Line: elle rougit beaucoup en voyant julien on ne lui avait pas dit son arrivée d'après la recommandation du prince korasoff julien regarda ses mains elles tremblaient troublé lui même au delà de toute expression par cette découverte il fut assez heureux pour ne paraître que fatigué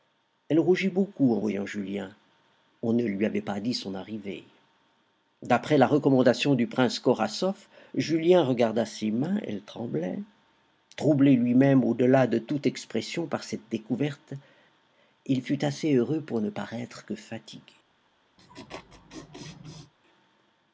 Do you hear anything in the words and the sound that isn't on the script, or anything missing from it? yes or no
yes